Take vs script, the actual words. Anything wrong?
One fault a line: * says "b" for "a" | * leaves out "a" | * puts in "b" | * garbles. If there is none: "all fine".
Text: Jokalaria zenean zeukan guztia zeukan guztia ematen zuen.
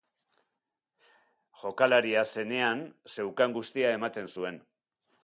* leaves out "zeukan guztia"